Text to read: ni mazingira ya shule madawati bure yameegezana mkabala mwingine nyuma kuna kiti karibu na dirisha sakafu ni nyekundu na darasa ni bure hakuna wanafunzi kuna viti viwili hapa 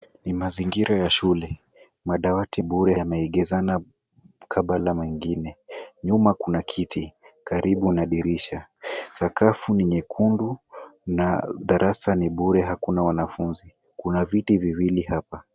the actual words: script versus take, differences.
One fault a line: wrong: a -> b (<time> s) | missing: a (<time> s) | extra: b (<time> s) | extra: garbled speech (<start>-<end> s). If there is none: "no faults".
no faults